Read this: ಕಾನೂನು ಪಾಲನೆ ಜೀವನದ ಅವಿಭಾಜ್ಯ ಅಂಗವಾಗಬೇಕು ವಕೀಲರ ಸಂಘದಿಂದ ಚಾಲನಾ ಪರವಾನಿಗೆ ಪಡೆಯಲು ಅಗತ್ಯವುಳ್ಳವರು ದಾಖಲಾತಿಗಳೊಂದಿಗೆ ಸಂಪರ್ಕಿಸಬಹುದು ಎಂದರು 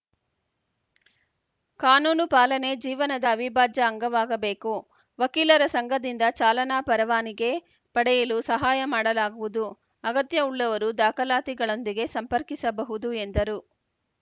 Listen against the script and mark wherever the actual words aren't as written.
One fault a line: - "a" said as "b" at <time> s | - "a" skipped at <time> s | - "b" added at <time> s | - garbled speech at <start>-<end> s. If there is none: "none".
- "ಸಹಾಯ ಮಾಡಲಾಗುವುದು" added at 8.5 s